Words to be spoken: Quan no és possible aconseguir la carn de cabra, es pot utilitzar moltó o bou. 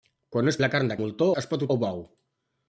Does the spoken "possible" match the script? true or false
false